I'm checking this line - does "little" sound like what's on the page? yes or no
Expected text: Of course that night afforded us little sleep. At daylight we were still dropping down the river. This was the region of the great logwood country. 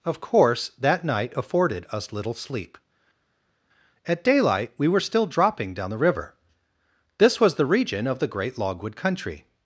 yes